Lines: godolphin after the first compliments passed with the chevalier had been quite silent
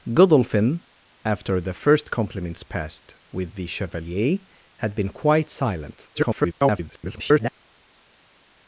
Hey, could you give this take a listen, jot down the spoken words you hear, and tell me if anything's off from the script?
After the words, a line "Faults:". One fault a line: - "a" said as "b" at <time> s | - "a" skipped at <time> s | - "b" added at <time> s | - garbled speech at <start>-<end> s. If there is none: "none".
godolphin after the first compliments passed with the chevalier had been quite silent [garbled]
Faults:
- garbled speech at 6.1-7.5 s